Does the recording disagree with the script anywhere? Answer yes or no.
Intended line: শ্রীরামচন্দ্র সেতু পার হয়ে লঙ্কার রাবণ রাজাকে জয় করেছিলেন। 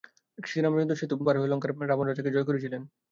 no